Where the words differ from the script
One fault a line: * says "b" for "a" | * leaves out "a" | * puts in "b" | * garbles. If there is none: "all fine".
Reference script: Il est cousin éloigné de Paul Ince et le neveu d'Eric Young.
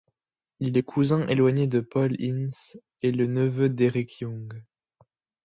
all fine